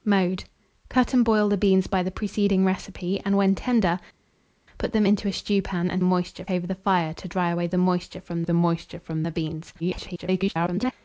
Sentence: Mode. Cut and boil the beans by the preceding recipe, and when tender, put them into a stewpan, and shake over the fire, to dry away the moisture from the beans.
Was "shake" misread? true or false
true